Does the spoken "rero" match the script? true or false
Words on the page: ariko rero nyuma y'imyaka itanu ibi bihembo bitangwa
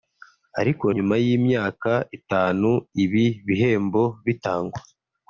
false